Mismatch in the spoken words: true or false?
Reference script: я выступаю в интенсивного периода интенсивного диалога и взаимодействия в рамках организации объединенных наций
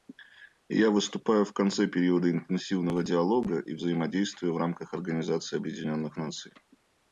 true